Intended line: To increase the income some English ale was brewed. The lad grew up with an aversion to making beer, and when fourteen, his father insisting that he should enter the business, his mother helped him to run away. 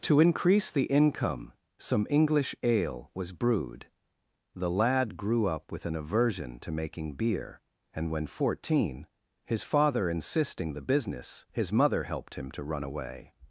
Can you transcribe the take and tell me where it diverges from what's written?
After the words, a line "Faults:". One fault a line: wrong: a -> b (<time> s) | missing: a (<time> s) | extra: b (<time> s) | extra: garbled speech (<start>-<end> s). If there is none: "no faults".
To increase the income some English ale was brewed. The lad grew up with an aversion to making beer, and when fourteen, his father insisting the business, his mother helped him to run away.
Faults:
missing: that he should enter (10.7 s)